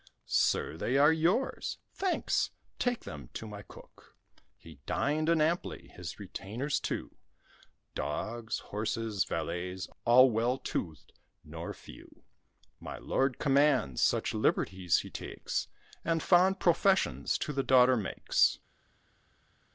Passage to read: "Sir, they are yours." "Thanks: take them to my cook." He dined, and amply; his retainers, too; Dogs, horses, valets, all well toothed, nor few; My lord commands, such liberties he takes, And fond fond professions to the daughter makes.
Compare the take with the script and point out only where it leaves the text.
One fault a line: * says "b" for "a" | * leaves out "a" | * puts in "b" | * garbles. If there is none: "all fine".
* leaves out "fond"